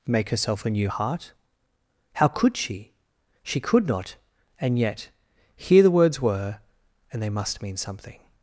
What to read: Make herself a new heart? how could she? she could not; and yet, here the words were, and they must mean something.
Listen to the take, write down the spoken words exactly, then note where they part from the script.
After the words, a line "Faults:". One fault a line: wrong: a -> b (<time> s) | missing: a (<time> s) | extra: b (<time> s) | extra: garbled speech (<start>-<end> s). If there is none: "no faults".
Make herself a new heart? how could she? she could not; and yet, here the words were, and they must mean something.
Faults:
no faults